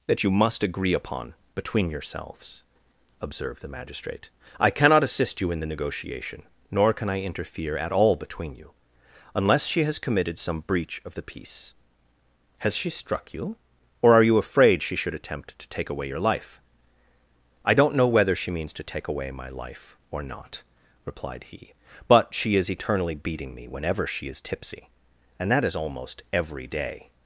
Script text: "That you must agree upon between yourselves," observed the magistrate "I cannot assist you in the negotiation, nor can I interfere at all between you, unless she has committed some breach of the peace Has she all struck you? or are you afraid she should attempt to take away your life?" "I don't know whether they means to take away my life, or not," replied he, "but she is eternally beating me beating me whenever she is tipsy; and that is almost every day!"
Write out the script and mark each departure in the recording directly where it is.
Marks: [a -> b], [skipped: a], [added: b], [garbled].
"That you must agree upon between yourselves," observed the magistrate "I cannot assist you in the negotiation, nor can I interfere at all between you, unless she has committed some breach of the peace Has she [skipped: all] struck you? or are you afraid she should attempt to take away your life?" "I don't know whether [they -> she] means to take away my life, or not," replied he, "but she is eternally beating me [skipped: beating me] whenever she is tipsy; and that is almost every day!"